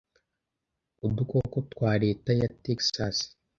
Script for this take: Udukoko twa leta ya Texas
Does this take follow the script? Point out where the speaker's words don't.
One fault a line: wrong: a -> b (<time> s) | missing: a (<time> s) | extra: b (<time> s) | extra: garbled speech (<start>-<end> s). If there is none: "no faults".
no faults